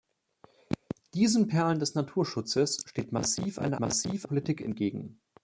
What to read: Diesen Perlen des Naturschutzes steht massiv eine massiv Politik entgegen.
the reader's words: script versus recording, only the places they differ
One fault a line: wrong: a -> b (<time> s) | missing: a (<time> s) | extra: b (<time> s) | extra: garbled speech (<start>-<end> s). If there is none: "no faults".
no faults